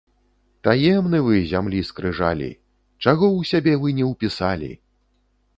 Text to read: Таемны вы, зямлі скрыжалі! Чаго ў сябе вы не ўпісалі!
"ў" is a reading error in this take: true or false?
false